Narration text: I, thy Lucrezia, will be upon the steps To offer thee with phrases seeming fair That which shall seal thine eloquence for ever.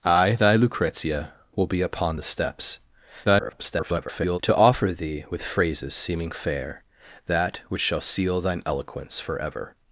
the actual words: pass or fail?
fail